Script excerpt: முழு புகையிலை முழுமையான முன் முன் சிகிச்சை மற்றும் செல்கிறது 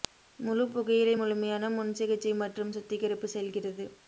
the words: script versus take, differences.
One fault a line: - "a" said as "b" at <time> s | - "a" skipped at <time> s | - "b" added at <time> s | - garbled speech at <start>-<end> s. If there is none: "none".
- "முன்" skipped at 1.9 s
- "சுத்திகரிப்பு" added at 2.7 s